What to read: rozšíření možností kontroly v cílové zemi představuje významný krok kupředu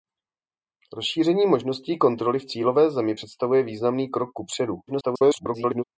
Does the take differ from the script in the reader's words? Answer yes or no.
yes